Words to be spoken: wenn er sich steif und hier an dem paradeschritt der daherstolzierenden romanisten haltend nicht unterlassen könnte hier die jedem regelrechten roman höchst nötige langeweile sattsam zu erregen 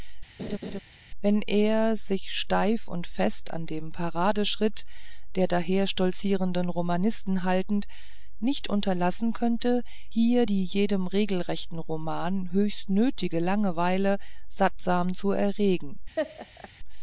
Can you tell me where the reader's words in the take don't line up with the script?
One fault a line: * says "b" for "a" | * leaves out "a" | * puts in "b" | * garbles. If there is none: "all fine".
* says "fest" for "hier"